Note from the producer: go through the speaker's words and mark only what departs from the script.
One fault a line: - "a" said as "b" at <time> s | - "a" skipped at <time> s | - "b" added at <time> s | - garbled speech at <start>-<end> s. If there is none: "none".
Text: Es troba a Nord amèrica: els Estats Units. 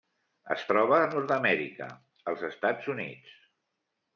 none